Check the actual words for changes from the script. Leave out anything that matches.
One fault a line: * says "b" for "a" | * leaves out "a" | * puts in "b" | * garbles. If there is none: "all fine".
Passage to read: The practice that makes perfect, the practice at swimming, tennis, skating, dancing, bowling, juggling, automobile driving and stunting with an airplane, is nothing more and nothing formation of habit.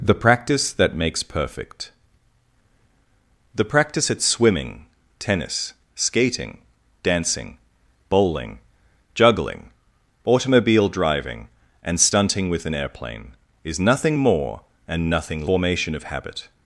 all fine